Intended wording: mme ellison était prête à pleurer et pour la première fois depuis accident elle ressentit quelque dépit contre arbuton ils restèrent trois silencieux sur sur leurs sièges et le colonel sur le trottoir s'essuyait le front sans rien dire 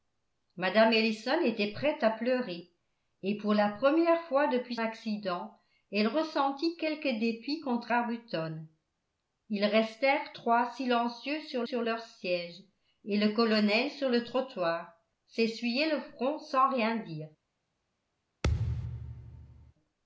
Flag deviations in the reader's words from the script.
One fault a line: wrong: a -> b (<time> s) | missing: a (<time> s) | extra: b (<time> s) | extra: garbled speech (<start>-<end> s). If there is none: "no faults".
no faults